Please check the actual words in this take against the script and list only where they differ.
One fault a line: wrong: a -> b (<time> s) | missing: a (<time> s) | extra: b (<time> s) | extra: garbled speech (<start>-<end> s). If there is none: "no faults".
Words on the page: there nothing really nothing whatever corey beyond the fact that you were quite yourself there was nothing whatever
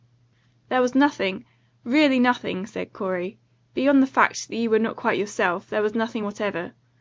extra: was (0.8 s)
wrong: whatever -> said (2.6 s)
extra: not (4.8 s)